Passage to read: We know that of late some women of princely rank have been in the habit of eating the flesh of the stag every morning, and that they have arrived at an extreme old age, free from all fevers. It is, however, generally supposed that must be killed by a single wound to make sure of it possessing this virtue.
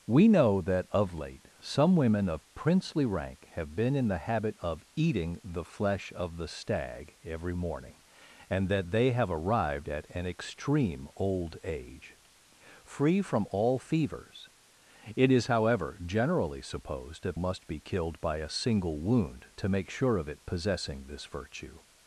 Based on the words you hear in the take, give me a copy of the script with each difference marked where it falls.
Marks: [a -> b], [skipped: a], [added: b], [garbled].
We know that of late some women of princely rank have been in the habit of eating the flesh of the stag every morning, and that they have arrived at an extreme old age, free from all fevers. It is, however, generally supposed that must be killed by a single wound to make sure of it possessing this virtue.